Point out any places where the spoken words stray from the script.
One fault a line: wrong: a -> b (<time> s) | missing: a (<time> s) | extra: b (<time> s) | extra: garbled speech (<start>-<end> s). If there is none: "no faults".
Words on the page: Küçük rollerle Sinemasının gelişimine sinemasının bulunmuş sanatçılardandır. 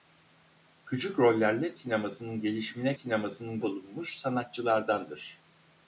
no faults